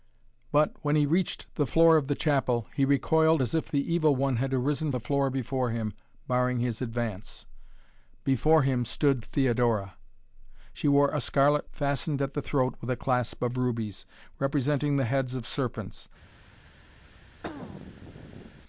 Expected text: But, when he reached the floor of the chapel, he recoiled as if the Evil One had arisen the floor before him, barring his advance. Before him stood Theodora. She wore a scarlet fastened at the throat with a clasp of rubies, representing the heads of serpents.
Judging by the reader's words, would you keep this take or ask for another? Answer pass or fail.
pass